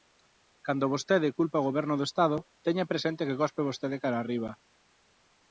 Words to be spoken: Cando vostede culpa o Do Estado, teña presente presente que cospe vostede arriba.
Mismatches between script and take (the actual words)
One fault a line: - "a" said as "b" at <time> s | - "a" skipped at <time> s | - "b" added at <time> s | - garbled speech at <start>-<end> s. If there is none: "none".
- "Goberno" added at 1.7 s
- "presente" skipped at 3.3 s
- "cara" added at 4.0 s